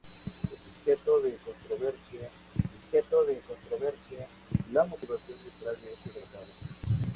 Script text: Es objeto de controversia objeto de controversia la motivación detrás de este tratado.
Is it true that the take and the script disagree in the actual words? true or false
false